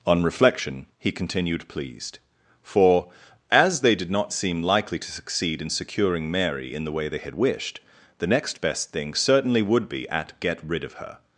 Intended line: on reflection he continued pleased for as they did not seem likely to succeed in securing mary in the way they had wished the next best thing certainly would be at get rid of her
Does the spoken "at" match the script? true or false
true